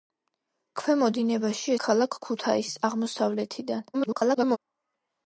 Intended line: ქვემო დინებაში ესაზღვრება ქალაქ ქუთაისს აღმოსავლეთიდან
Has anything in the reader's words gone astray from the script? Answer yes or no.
yes